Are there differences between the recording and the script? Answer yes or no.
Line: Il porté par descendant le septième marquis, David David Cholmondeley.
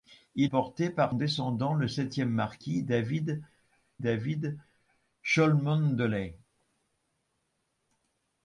no